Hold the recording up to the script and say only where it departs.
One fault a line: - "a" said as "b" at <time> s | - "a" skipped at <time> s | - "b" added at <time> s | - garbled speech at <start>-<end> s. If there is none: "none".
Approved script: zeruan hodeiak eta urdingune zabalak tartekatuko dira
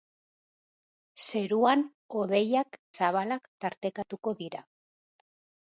- "eta urdingune" skipped at 2.8 s